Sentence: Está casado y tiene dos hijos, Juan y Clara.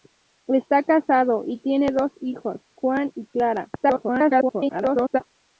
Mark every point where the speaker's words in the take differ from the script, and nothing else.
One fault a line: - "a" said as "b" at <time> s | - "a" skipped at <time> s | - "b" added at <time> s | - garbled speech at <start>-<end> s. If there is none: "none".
- garbled speech at 3.8-5.2 s